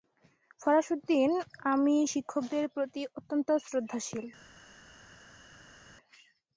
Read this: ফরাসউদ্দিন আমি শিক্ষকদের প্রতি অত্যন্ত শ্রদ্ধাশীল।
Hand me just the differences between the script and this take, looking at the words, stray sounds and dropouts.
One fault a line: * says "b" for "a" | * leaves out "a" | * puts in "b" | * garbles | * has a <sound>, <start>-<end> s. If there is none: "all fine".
all fine